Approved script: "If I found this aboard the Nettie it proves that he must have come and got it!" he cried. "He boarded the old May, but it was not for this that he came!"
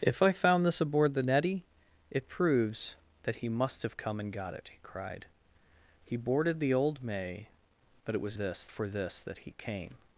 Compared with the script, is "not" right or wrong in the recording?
wrong